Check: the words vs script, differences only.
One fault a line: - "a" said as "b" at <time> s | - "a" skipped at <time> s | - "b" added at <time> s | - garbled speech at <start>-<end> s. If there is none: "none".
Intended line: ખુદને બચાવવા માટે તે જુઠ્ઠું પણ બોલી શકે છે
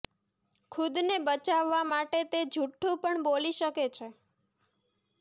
none